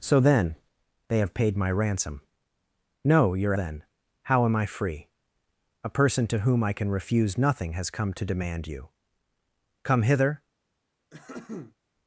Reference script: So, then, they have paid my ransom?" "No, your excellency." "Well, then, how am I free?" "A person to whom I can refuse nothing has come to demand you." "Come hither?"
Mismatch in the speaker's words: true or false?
true